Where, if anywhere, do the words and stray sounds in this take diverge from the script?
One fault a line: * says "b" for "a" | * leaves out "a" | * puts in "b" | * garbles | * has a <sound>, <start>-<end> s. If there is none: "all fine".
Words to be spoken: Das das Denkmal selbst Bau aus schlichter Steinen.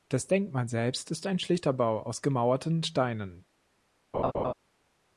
* leaves out "das"
* puts in "ist ein schlichter"
* says "gemauerten" for "schlichter"
* has a laugh, 4.1-4.5 s